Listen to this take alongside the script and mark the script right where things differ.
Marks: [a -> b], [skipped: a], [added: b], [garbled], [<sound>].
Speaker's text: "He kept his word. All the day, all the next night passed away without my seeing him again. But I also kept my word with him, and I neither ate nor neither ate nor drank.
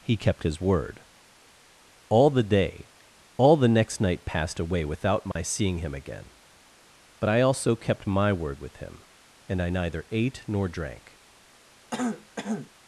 "He kept his word. All the day, all the next night passed away without my [dropout] seeing him again. But I also kept my word with him, and I neither ate nor [skipped: neither ate nor] drank. [throat clearing]